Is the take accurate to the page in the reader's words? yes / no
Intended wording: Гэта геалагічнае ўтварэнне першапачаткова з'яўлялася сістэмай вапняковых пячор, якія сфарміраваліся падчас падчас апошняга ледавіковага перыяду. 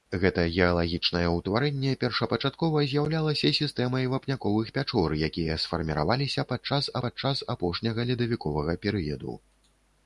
yes